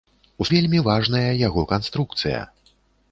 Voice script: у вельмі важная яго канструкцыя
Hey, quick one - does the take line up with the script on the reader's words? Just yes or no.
yes